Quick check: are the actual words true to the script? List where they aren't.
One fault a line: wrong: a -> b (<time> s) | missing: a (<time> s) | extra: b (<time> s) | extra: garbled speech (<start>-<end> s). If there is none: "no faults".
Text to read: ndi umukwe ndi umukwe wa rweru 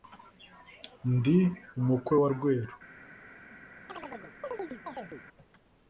missing: ndi umukwe (2.1 s)